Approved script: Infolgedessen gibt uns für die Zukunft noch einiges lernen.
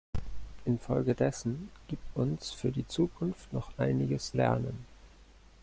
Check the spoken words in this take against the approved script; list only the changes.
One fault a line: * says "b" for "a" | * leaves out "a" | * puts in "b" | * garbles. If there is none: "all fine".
all fine